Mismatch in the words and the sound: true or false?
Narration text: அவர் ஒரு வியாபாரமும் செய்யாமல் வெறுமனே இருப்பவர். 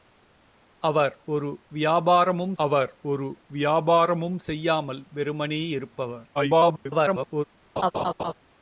true